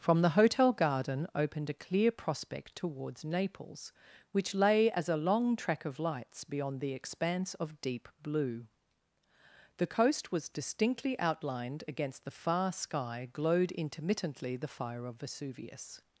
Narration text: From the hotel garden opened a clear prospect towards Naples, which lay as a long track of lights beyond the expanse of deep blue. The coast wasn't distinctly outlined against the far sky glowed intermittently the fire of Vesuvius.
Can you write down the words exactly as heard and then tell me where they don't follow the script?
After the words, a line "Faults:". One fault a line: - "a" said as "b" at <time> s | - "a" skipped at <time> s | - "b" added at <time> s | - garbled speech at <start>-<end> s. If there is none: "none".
From the hotel garden opened a clear prospect towards Naples, which lay as a long track of lights beyond the expanse of deep blue. The coast was distinctly outlined against the far sky glowed intermittently the fire of Vesuvius.
Faults:
- "wasn't" said as "was" at 10.3 s